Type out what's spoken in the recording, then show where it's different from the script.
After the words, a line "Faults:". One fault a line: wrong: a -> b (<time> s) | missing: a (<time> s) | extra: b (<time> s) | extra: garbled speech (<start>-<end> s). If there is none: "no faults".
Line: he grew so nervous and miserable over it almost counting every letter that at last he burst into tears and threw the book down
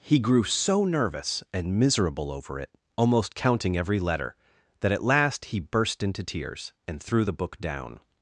he grew so nervous and miserable over it almost counting every letter that at last he burst into tears and threw the book down
Faults:
no faults